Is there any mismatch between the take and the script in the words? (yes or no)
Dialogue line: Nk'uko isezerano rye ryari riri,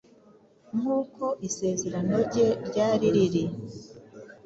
no